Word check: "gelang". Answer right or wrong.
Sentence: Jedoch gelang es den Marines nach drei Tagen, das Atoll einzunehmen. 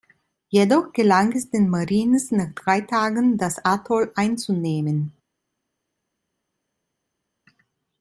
right